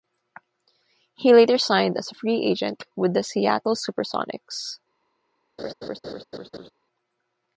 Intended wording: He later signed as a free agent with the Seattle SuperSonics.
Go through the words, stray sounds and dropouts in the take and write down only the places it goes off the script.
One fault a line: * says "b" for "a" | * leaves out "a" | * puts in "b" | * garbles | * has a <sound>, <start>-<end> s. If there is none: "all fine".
* has a laugh, 5.6-6.7 s